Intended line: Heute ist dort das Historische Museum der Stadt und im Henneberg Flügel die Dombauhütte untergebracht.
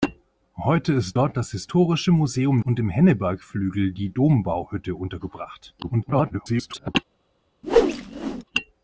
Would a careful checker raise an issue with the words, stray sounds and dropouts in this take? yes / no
yes